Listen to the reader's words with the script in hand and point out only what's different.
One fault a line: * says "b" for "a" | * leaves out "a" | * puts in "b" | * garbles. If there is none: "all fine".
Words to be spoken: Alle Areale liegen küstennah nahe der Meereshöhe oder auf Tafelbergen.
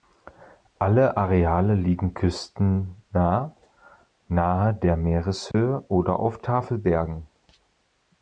all fine